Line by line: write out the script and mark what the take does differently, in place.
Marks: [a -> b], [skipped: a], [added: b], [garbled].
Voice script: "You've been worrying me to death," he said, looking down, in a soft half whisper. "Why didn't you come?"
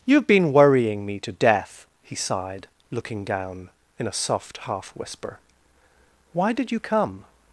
"You've been worrying me to death," he [said, -> sighed] looking down, in a soft half whisper. "Why [didn't -> did] you come?"